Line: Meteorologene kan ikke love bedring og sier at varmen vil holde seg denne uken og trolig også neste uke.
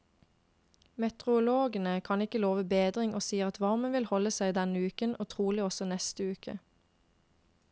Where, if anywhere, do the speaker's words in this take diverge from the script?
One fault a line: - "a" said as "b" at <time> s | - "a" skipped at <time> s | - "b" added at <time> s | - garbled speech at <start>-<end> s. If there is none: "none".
none